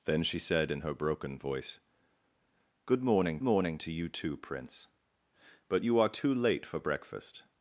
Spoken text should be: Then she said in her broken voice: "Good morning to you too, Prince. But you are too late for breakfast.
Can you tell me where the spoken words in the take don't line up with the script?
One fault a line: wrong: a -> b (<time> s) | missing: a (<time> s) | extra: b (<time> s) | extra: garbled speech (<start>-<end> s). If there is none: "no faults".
extra: morning (3.4 s)